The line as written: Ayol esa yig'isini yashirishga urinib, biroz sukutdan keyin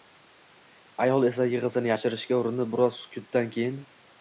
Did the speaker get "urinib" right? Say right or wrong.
right